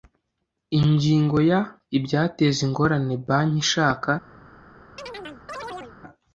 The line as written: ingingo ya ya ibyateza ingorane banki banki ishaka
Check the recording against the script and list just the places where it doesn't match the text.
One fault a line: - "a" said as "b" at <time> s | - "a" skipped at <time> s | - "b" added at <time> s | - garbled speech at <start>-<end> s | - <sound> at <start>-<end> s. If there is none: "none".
- "ya" skipped at 1.6 s
- "banki" skipped at 3.6 s
- chirp at 5.0-6.0 s